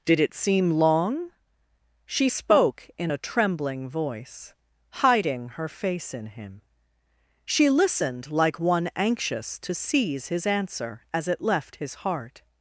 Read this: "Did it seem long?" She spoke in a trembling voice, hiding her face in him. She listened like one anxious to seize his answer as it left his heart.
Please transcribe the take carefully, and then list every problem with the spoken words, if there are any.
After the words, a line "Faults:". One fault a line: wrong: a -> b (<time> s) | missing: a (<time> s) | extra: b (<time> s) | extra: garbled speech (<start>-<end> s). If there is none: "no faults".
"Did it seem long?" She spoke in a trembling voice, hiding her face in him. She listened like one anxious to seize his answer as it left his heart.
Faults:
no faults